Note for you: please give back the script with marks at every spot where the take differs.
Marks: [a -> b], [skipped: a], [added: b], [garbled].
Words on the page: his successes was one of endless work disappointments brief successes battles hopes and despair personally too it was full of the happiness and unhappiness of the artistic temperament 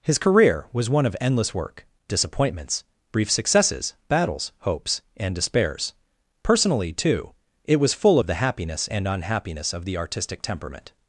his [successes -> career] was one of endless work disappointments brief successes battles hopes and [despair -> despairs] personally too it was full of the happiness and unhappiness of the artistic temperament